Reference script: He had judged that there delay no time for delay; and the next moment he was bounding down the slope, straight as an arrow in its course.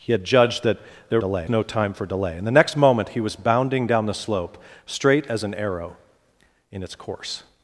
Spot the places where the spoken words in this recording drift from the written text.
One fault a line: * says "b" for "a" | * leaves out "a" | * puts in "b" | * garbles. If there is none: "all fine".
all fine